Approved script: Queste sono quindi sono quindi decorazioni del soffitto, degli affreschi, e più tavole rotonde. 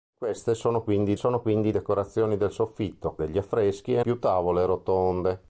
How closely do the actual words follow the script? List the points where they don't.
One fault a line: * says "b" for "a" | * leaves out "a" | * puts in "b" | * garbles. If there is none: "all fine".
all fine